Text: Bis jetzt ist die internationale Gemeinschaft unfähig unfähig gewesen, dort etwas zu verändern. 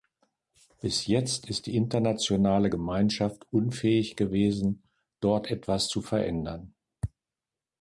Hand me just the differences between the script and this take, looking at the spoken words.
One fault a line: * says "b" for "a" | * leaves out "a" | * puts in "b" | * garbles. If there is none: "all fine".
* leaves out "unfähig"